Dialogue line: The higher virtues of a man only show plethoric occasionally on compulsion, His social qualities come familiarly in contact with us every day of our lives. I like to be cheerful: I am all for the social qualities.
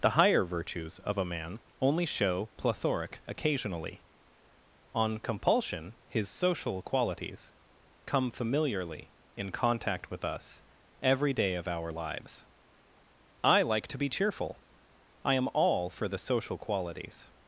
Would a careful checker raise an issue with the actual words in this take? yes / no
no